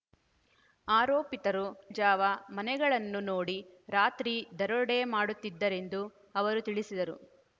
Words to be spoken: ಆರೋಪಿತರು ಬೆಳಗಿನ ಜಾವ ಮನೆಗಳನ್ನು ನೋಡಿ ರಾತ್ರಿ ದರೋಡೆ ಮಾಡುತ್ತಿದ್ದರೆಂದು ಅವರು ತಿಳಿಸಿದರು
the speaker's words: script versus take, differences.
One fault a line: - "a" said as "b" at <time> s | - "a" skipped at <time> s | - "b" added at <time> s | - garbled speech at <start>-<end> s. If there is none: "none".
- "ಬೆಳಗಿನ" skipped at 1.6 s